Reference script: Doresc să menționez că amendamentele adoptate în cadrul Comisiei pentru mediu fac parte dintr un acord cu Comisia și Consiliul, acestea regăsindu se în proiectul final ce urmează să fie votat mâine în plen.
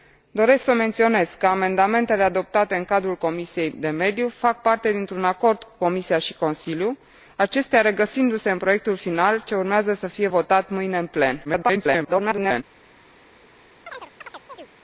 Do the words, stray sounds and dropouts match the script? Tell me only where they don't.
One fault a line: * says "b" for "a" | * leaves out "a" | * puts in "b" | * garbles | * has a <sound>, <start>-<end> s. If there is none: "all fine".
* garbles
* has a chirp, 13.9-14.7 s